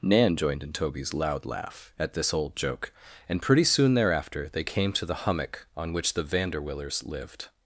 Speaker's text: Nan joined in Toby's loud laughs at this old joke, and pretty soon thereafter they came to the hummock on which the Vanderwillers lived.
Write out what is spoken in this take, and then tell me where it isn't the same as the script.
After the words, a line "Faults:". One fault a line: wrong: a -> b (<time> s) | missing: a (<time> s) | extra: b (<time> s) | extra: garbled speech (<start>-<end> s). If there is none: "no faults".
Nan joined in Toby's loud laugh at this old joke, and pretty soon thereafter they came to the hummock on which the Vanderwillers lived.
Faults:
wrong: laughs -> laugh (1.4 s)